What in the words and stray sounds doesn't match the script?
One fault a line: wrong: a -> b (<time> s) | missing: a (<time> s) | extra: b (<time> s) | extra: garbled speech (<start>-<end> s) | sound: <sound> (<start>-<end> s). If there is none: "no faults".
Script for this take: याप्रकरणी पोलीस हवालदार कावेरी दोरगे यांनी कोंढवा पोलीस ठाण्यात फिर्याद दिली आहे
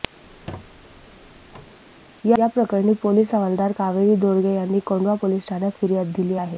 sound: squeak (0.2-1.8 s)